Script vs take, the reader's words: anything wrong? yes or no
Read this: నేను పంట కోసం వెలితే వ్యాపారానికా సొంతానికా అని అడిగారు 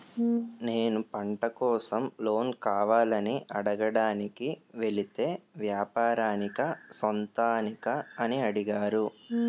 yes